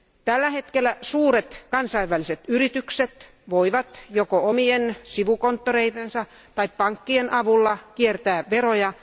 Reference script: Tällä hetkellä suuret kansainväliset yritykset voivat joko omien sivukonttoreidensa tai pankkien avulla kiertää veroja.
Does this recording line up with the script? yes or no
yes